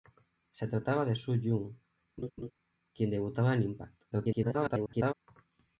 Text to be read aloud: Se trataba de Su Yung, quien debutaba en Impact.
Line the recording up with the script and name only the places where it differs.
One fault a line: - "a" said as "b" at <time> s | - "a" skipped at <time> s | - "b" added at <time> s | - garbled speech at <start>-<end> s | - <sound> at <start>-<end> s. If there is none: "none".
- laugh at 2.2-2.5 s
- garbled speech at 4.1-5.1 s